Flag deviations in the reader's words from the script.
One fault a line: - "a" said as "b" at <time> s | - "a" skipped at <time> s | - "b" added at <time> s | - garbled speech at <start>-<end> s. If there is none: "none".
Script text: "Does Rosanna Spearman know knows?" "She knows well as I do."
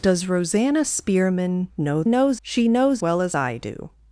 none